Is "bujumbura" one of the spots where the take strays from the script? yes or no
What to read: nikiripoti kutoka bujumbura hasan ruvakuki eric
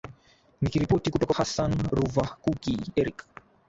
yes